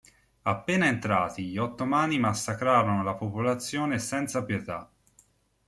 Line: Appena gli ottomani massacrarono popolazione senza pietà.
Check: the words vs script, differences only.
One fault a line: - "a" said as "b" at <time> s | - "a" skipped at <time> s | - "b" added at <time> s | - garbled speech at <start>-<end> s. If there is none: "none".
- "entrati" added at 0.9 s
- "la" added at 3.0 s